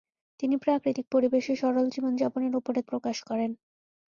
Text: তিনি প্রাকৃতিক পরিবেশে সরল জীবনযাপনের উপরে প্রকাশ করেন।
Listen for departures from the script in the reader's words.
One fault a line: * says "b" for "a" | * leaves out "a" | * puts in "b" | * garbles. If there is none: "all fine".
all fine